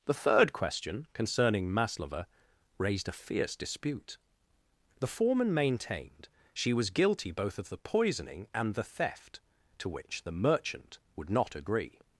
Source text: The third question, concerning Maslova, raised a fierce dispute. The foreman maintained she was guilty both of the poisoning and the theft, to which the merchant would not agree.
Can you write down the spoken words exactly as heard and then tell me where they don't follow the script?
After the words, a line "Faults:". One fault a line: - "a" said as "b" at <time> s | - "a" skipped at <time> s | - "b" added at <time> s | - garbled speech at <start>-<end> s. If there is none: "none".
The third question, concerning Maslova, raised a fierce dispute. The foreman maintained she was guilty both of the poisoning and the theft, to which the merchant would not agree.
Faults:
none